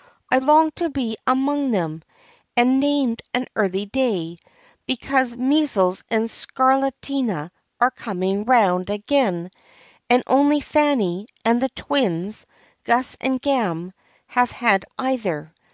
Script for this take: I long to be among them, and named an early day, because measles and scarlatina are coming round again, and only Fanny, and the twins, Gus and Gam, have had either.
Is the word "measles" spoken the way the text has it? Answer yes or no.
yes